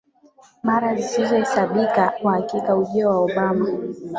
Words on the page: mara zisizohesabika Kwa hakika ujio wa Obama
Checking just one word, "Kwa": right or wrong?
right